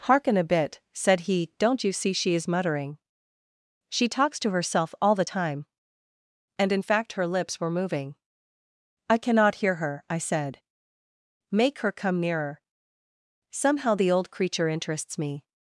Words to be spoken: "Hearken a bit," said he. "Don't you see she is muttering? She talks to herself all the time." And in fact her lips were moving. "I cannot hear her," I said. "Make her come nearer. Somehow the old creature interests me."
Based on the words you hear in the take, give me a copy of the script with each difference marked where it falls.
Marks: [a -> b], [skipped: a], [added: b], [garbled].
"Hearken a bit," said he. "Don't you see she is muttering? She talks to herself all the time." And in fact her lips were moving. "I cannot hear her," I said. "Make her come nearer. Somehow the old creature interests me."